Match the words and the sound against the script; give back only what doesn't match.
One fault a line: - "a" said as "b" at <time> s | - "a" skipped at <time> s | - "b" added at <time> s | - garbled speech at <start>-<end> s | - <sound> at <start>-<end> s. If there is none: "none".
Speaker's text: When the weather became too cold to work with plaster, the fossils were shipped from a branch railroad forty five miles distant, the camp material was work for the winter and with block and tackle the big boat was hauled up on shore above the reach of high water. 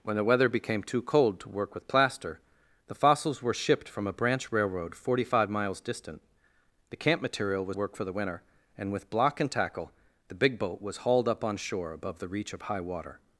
none